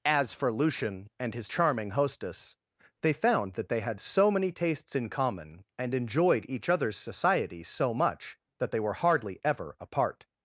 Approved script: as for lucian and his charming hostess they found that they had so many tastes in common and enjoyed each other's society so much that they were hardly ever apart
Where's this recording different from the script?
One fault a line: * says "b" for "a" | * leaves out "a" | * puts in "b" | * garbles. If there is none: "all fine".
all fine